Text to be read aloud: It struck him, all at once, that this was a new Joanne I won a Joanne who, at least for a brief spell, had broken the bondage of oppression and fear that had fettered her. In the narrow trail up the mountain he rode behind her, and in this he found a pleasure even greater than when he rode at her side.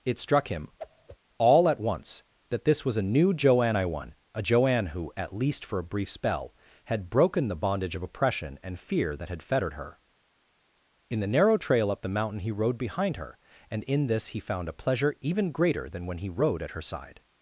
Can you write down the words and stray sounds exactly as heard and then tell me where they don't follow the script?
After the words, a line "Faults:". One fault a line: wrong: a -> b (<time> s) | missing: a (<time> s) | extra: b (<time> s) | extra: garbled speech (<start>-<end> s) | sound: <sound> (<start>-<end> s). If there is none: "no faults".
It struck him, all at once, that this was a new Joanne I won a Joanne who, at least for a brief spell, had broken the bondage of oppression and fear that had fettered her. In the narrow trail up the mountain he rode behind her, and in this he found a pleasure even greater than when he rode at her side.
Faults:
sound: whoosh (0.8-1.2 s)